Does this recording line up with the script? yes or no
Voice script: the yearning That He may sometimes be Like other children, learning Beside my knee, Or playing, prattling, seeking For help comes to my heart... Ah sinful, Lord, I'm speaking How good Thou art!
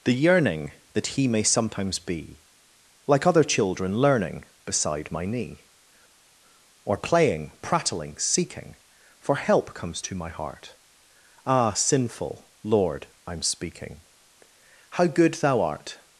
yes